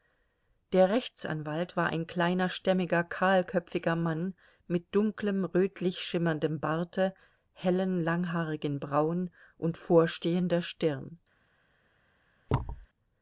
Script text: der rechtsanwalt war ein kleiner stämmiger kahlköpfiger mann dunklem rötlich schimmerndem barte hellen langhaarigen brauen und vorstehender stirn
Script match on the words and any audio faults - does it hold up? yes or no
no